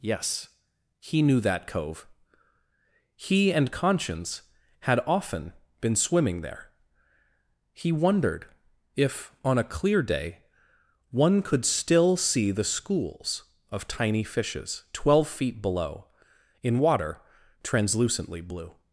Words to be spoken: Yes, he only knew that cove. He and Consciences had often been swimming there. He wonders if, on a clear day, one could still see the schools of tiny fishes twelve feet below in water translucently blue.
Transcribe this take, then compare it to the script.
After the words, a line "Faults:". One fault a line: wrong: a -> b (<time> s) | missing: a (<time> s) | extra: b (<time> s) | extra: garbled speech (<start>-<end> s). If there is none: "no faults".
Yes, he knew that cove. He and Conscience had often been swimming there. He wondered if, on a clear day, one could still see the schools of tiny fishes twelve feet below in water translucently blue.
Faults:
missing: only (1.2 s)
wrong: Consciences -> Conscience (3.7 s)
wrong: wonders -> wondered (7.9 s)